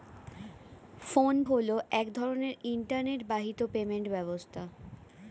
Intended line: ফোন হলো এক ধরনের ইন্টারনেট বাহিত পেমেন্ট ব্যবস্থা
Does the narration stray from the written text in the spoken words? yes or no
no